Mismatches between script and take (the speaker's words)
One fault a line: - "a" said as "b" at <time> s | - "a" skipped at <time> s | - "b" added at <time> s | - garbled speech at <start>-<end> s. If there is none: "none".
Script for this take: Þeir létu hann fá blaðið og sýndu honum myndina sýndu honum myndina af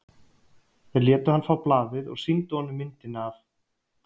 - "sýndu honum myndina" skipped at 3.3 s